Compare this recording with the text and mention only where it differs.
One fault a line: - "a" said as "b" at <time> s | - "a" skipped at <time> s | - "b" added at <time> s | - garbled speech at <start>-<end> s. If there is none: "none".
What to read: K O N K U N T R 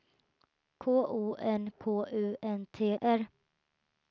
none